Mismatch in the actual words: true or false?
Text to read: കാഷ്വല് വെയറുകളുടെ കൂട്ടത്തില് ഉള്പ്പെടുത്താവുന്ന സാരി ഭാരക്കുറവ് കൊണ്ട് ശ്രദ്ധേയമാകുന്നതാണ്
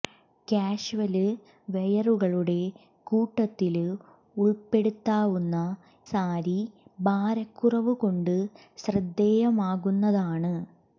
false